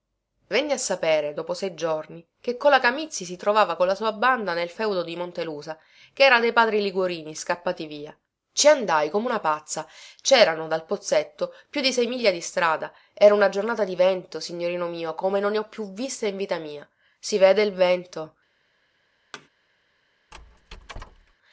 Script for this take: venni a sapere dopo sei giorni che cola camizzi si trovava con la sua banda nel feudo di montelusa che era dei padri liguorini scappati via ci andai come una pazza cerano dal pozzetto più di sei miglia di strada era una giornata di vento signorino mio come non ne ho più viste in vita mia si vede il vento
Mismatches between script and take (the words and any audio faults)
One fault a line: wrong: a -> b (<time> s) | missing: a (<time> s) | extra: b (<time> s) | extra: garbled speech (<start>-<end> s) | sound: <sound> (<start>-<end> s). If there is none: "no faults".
sound: thud (19.3-19.5 s)
sound: squeak (20.3-21.3 s)